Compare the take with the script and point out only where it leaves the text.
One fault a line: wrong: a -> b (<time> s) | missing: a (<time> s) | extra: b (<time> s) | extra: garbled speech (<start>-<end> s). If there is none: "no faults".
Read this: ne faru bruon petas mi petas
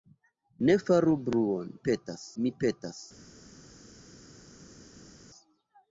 no faults